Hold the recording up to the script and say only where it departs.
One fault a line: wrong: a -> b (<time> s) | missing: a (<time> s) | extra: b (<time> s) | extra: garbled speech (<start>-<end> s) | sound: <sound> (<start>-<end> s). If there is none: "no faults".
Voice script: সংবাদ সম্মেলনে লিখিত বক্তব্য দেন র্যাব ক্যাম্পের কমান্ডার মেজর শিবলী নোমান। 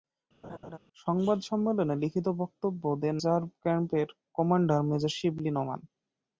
sound: laugh (0.4-0.8 s)